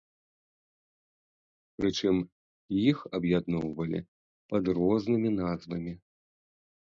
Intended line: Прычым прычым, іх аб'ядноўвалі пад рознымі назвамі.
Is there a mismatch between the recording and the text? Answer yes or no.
yes